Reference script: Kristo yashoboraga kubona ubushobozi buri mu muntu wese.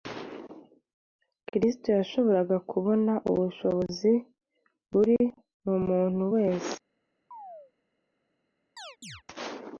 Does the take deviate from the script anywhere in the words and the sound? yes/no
yes